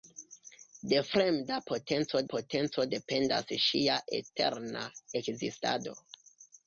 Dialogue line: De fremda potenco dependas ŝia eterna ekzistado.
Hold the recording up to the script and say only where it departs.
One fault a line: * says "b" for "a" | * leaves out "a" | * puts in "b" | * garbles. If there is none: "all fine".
* puts in "potenco"